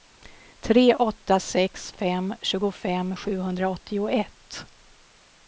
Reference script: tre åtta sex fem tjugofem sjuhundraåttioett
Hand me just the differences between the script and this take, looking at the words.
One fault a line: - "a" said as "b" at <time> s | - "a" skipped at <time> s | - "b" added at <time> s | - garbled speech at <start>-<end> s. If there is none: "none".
none